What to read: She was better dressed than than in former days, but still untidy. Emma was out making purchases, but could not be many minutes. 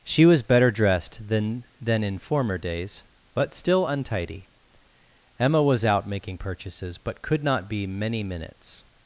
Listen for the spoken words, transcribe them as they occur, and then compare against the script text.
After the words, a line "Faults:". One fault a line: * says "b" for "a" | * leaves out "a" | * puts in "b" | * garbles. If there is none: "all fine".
She was better dressed than than in former days, but still untidy. Emma was out making purchases, but could not be many minutes.
Faults:
all fine